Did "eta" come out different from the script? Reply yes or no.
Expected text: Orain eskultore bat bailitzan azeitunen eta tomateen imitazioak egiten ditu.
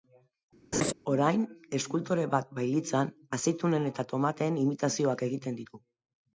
no